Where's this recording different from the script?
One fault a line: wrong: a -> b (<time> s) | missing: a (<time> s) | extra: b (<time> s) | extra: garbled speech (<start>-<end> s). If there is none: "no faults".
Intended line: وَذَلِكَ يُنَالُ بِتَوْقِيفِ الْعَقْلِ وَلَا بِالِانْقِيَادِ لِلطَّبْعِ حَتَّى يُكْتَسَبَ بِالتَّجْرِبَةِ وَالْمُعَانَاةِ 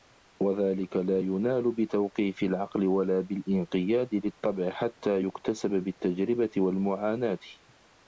extra: لَا (1.0 s)